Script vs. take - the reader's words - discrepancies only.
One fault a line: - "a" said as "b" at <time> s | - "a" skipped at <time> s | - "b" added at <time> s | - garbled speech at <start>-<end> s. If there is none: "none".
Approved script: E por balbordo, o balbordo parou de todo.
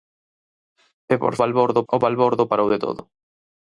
none